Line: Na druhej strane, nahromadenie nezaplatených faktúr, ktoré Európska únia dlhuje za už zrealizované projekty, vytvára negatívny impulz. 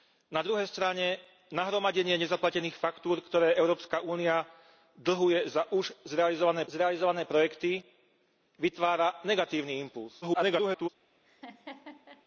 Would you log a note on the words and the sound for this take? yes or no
yes